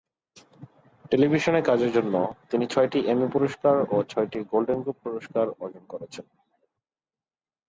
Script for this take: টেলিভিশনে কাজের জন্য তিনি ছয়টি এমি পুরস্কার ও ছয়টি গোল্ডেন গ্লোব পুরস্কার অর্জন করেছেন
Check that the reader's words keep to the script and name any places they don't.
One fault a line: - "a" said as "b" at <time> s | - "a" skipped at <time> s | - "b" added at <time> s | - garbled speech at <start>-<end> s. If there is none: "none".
none